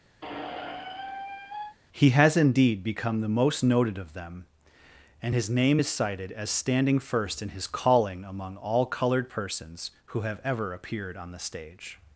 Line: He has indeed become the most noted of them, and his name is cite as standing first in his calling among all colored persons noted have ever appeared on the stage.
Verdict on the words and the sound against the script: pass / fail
fail